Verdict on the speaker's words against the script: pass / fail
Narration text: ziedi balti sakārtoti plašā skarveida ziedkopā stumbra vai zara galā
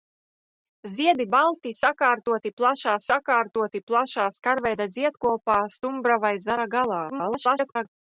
fail